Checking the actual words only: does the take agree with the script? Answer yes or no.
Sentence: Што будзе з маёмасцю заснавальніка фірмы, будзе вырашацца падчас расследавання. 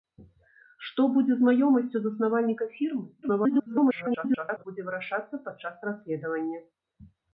no